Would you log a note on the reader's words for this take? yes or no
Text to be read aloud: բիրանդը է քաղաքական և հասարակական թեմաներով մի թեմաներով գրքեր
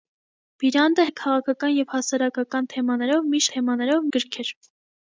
no